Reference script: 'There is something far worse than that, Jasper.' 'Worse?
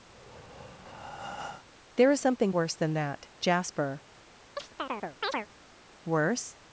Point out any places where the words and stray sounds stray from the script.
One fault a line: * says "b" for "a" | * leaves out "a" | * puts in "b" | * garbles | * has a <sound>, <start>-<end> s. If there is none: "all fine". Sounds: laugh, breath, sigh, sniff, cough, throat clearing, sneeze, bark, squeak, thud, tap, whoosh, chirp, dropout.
* has a breath, 0.1-1.6 s
* leaves out "far"
* has a chirp, 4.6-5.5 s